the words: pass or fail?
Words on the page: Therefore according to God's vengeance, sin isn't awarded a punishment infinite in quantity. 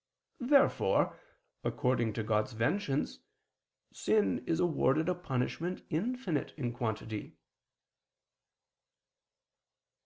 fail